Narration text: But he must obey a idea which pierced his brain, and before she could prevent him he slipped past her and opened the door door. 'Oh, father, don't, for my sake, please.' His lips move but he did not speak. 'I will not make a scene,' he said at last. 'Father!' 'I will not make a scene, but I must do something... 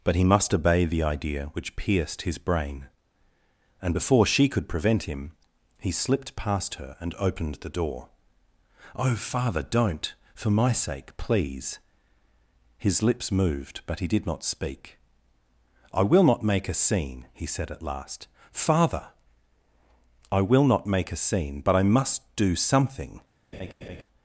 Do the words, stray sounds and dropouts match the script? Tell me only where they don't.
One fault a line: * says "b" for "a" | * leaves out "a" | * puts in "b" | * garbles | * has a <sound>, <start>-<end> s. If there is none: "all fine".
* says "the" for "a"
* leaves out "door"
* says "moved" for "move"
* has a laugh, 23.5-24.0 s